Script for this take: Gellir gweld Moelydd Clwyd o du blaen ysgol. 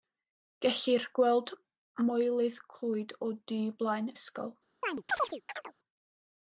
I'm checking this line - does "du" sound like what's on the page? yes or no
yes